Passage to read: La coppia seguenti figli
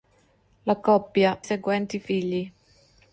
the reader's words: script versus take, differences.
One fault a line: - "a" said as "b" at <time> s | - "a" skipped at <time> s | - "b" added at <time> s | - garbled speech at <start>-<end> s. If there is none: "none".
none